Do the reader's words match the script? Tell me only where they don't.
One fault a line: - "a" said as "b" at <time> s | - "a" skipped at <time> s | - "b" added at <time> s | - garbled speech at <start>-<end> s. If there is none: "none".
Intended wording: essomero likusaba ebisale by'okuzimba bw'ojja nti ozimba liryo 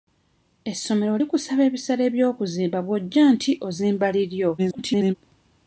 - garbled speech at 4.6-5.2 s